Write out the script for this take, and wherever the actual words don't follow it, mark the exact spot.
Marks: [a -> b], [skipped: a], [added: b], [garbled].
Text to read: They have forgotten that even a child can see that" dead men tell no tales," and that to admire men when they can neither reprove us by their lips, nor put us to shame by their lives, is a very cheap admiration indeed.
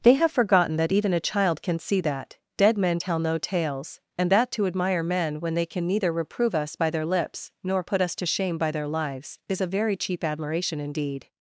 They have forgotten that even a child can see that" dead men tell no tales," and that to admire men when they can neither reprove us by their lips, nor put us to shame by their lives, is a very cheap admiration indeed.